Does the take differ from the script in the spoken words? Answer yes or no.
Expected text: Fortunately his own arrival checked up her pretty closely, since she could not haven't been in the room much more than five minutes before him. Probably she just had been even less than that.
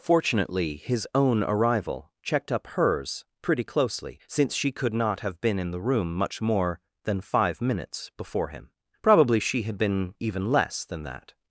yes